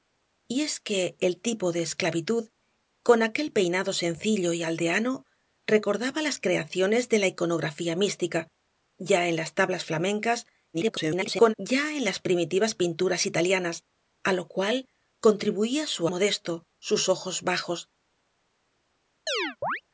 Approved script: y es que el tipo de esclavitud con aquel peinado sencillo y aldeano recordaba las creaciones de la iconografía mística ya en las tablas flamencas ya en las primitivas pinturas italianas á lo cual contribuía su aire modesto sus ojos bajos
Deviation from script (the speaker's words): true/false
true